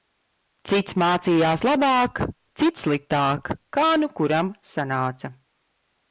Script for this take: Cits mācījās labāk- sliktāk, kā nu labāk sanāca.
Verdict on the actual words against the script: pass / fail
fail